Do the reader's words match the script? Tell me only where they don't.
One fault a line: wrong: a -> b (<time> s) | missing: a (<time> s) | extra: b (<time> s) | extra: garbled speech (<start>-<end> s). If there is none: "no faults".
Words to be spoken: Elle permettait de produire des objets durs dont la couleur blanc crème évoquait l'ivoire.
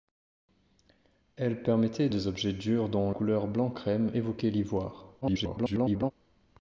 missing: de produire (2.1 s)
missing: la (3.1 s)
extra: garbled speech (5.2-6.1 s)